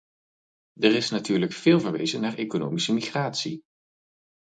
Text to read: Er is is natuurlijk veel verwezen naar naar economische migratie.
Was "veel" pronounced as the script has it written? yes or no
yes